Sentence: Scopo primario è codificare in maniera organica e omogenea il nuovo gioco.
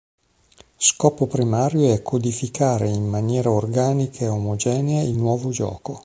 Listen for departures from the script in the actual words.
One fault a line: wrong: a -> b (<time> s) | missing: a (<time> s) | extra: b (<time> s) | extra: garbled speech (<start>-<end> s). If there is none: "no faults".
no faults